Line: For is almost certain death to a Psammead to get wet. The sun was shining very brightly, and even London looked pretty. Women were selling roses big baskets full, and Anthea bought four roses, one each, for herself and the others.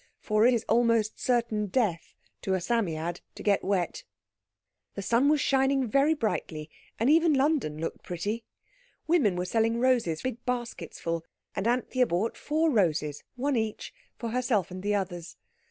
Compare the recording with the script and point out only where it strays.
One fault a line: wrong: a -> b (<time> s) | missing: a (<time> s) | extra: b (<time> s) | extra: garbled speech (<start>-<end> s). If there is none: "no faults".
no faults